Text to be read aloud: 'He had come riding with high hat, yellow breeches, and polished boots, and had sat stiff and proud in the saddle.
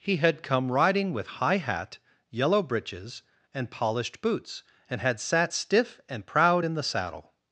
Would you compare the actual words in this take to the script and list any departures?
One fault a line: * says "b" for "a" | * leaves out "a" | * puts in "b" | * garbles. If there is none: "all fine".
all fine